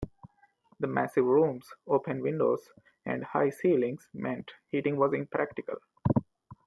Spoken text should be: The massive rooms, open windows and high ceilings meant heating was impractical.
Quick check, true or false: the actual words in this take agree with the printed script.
true